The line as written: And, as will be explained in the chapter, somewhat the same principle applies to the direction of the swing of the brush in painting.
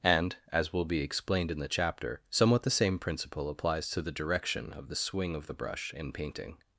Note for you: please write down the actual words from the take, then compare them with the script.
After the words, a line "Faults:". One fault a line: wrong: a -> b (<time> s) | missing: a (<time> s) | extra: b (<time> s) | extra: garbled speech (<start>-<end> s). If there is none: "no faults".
And, as will be explained in the chapter, somewhat the same principle applies to the direction of the swing of the brush in painting.
Faults:
no faults